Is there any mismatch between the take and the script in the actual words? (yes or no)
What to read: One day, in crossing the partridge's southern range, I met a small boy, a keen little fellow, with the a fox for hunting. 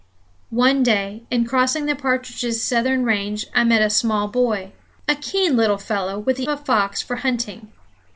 no